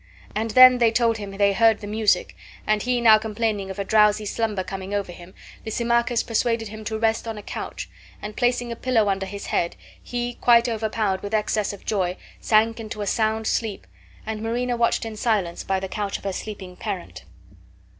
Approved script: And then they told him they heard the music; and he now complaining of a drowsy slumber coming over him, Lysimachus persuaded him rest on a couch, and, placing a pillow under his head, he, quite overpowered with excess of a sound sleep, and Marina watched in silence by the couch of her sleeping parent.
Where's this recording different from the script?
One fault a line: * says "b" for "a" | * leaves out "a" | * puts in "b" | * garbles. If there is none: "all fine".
* puts in "to"
* puts in "joy sank into"